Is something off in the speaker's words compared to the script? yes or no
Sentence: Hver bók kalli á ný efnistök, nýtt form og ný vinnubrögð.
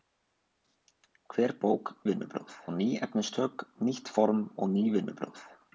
yes